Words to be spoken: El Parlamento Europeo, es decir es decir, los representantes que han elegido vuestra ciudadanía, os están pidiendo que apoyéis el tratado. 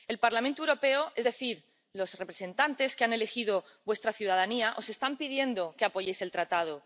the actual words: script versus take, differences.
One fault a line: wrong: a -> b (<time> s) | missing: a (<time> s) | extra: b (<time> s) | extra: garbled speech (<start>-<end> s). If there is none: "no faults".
missing: es decir (1.6 s)